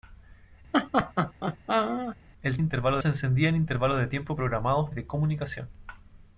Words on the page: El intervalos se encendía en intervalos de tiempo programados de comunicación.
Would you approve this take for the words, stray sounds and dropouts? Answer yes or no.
no